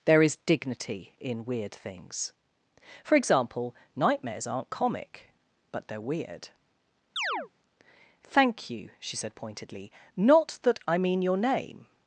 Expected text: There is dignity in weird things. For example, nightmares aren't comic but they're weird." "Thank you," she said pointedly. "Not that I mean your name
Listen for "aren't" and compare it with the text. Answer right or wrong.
right